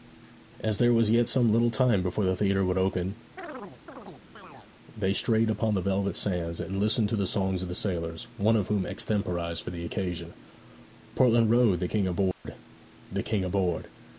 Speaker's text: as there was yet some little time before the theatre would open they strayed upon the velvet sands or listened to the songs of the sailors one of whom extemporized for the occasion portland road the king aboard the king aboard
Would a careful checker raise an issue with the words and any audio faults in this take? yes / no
yes